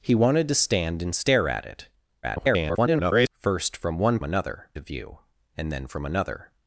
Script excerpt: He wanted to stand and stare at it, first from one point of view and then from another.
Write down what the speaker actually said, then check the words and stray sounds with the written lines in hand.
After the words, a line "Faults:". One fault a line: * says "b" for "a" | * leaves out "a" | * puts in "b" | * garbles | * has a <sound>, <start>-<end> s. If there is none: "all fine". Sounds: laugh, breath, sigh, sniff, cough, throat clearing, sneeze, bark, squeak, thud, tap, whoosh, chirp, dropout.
He wanted to stand and stare at it, [garbled] first from one another of view and then from another.
Faults:
* garbles
* says "another" for "point"